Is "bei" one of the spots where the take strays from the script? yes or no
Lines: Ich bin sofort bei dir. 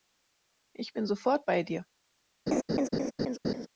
no